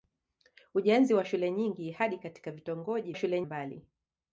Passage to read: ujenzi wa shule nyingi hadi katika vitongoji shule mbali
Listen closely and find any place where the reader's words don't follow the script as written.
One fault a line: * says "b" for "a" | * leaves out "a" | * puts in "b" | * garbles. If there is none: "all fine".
all fine